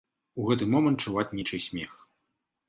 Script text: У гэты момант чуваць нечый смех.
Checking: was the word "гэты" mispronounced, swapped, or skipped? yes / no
no